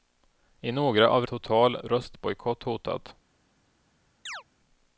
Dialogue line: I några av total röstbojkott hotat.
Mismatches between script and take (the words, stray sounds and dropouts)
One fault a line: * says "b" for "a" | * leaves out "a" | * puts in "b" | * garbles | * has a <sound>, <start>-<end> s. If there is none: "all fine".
* has a chirp, 4.3-4.4 s